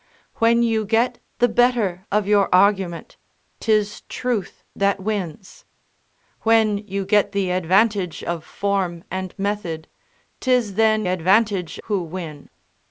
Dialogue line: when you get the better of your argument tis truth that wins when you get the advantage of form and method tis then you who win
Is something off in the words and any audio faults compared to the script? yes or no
yes